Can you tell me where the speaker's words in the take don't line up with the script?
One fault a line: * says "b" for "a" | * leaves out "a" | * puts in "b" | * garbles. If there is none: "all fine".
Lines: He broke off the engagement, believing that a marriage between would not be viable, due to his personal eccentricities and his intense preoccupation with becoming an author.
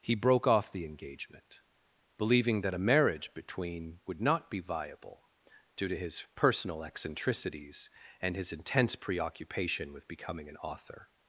all fine